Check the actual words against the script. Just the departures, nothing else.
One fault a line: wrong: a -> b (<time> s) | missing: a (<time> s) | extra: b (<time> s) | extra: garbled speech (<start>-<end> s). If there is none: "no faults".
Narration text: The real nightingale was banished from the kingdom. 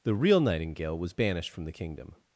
no faults